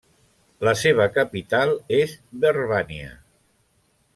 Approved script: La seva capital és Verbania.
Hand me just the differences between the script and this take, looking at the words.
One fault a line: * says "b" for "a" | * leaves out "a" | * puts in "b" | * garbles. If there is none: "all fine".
all fine